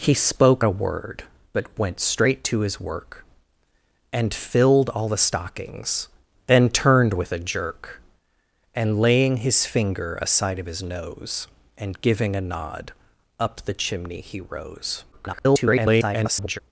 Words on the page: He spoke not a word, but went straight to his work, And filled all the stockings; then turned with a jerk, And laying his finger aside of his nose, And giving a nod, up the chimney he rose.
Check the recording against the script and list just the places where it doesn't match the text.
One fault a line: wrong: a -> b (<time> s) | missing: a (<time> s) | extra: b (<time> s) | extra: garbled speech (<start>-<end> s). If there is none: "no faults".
missing: not (0.7 s)
extra: garbled speech (15.1-16.6 s)